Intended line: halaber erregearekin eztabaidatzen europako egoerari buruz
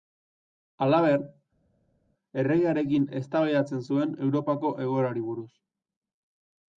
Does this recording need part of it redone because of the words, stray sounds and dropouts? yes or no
yes